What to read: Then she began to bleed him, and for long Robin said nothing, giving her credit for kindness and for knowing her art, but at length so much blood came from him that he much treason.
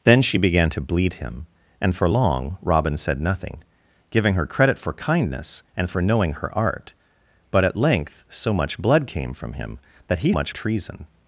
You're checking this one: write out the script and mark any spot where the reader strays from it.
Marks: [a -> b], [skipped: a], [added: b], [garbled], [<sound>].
Then she began to bleed him, and for long Robin said nothing, giving her credit for kindness and for knowing her art, but at length so much blood came from him that he much treason.